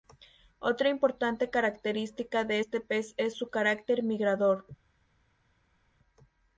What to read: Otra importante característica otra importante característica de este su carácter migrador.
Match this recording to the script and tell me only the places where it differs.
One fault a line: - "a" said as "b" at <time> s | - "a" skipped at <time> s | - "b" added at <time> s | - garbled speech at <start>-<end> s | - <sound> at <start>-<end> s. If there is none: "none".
- "otra importante característica de este" said as "de este pez es" at 2.4 s